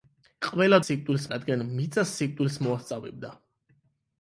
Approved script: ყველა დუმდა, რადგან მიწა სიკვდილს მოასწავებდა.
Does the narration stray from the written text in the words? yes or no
yes